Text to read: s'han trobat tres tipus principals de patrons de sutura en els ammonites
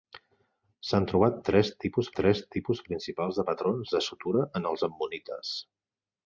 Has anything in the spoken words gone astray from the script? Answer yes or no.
yes